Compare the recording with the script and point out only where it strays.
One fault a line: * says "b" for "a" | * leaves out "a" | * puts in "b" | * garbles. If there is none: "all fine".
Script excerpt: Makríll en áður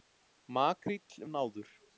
all fine